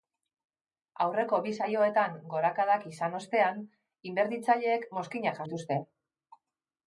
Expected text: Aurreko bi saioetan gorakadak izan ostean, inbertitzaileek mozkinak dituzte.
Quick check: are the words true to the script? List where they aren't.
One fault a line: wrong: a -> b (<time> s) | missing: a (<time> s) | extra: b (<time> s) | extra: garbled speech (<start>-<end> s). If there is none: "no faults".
no faults